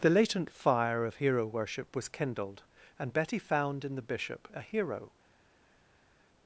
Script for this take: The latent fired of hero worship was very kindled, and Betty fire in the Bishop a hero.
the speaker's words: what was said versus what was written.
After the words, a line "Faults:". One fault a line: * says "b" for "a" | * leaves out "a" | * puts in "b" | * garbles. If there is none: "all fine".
The latent fire of hero worship was kindled, and Betty found in the Bishop a hero.
Faults:
* says "fire" for "fired"
* leaves out "very"
* says "found" for "fire"